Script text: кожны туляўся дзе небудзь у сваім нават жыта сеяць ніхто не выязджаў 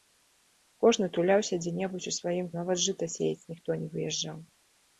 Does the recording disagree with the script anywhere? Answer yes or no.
no